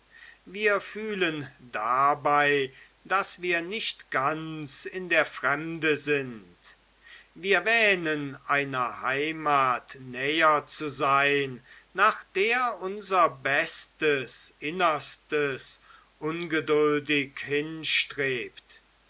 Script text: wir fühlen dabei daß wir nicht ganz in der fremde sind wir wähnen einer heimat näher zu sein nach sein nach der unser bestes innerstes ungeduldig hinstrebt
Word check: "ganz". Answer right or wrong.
right